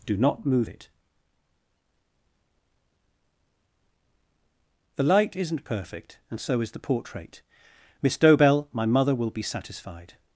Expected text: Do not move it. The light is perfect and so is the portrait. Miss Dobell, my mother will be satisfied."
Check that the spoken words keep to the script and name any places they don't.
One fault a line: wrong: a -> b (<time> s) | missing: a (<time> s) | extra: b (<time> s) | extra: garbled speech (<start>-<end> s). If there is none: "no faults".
wrong: is -> isn't (5.3 s)